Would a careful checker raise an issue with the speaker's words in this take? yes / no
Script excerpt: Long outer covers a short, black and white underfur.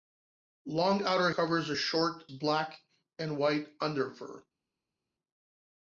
no